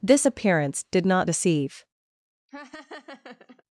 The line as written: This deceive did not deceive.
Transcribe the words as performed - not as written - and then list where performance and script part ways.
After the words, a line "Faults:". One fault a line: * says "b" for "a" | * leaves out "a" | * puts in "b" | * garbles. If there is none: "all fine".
This appearance did not deceive.
Faults:
* says "appearance" for "deceive"